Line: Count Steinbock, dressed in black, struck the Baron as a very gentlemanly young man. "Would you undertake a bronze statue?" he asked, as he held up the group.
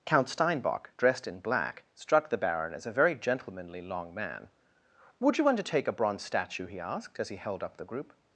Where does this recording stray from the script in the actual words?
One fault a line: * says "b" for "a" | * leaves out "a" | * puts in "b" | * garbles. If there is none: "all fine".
* says "long" for "young"